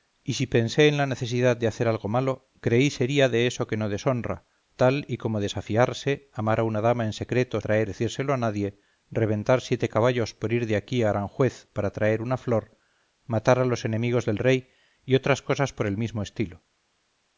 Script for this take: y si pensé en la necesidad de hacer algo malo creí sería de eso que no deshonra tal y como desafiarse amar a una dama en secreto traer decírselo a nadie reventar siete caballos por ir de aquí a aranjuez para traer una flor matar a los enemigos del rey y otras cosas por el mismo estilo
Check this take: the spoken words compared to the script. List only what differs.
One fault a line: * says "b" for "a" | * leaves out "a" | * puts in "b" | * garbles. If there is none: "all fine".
all fine